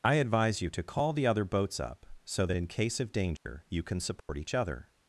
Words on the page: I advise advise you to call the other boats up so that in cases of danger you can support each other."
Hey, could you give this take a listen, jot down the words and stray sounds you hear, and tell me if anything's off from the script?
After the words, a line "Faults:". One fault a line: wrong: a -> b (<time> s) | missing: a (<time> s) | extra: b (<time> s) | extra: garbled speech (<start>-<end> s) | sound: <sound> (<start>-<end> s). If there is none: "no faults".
I advise you to call the other boats up so that in case of danger you can support each other."
Faults:
missing: advise (0.6 s)
wrong: cases -> case (2.7 s)
sound: dropout (3.4-3.5 s)
sound: dropout (4.2-4.3 s)